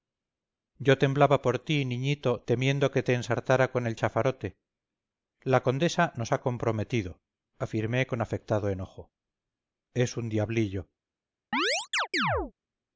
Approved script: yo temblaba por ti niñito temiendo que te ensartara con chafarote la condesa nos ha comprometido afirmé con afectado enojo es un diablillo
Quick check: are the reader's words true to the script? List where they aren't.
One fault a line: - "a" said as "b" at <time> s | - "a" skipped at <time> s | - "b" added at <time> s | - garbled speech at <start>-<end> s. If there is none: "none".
- "el" added at 3.9 s